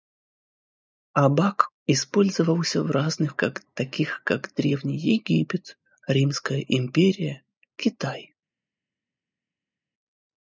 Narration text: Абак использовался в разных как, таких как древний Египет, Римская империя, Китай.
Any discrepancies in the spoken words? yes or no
no